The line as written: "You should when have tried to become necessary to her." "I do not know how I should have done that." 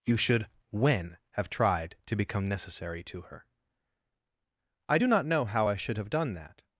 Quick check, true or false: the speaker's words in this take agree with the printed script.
true